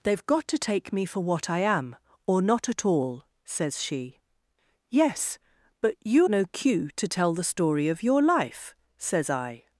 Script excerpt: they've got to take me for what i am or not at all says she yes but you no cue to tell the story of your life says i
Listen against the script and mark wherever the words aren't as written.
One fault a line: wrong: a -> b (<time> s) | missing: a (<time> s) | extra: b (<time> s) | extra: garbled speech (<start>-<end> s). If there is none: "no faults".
no faults